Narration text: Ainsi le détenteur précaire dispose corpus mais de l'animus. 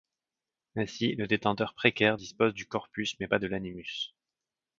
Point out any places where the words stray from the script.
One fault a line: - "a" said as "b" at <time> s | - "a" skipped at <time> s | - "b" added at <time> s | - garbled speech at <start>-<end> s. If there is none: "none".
- "du" added at 2.5 s
- "pas" added at 3.3 s